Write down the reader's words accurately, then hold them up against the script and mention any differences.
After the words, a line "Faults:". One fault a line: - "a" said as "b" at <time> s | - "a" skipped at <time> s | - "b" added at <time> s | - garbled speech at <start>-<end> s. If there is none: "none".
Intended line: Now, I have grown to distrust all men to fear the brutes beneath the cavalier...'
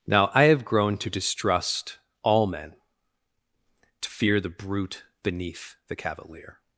Now, I have grown to distrust all men to fear the brute beneath the cavalier...'
Faults:
- "brutes" said as "brute" at 4.5 s